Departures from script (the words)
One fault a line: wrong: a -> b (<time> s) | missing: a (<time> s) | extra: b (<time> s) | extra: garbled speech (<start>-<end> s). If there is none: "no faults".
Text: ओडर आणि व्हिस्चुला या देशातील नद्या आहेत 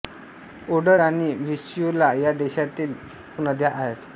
no faults